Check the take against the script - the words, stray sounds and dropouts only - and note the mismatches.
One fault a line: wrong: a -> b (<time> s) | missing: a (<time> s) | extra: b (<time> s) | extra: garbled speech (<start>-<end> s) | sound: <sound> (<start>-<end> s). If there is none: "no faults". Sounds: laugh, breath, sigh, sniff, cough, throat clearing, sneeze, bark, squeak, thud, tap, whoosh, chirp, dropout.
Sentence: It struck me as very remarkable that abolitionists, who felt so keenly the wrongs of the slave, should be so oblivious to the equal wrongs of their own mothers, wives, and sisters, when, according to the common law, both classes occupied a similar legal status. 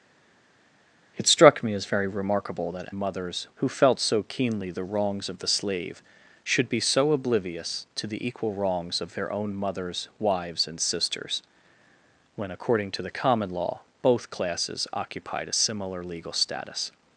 wrong: abolitionists -> mothers (2.9 s)